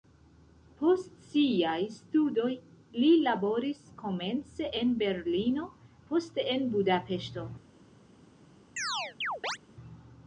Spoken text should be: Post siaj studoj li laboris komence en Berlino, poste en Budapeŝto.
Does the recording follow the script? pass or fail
pass